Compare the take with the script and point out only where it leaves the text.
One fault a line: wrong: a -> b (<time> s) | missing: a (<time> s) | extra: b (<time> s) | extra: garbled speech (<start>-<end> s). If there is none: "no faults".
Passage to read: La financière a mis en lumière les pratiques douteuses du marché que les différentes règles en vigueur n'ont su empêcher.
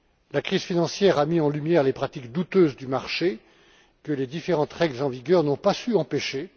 extra: crise (0.4 s)
extra: pas (5.6 s)